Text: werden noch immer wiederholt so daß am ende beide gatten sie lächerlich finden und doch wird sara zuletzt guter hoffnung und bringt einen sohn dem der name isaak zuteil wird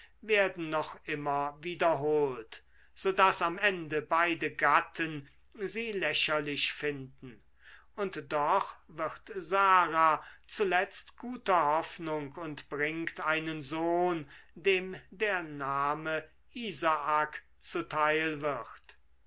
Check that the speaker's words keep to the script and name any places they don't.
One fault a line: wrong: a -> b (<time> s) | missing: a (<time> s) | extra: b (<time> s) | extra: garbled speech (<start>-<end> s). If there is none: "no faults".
no faults